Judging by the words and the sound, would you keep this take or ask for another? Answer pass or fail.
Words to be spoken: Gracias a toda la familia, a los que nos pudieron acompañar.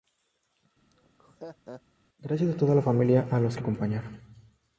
fail